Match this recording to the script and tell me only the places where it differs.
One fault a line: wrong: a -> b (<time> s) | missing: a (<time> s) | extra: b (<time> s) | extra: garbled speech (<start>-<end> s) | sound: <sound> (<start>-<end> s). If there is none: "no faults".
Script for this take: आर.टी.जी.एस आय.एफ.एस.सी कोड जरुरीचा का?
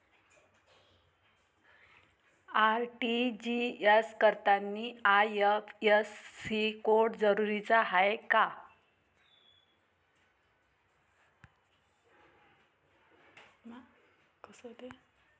extra: करतांनी (4.2 s)
extra: हाय (7.8 s)